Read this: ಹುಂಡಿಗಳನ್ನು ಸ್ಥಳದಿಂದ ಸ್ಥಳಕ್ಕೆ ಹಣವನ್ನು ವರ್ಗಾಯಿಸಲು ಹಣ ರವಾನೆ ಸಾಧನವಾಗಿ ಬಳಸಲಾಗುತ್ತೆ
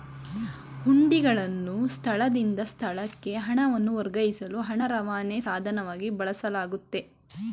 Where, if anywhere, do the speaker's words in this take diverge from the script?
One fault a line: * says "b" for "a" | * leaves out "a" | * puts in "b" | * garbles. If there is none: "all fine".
all fine